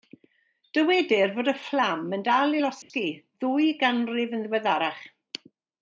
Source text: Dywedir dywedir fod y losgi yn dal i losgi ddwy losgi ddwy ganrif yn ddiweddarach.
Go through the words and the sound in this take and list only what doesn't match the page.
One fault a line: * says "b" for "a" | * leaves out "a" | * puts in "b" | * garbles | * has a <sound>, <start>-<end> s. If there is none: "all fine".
* leaves out "dywedir"
* says "fflam" for "losgi"
* has a dropout, 2.8-2.9 s
* leaves out "losgi ddwy"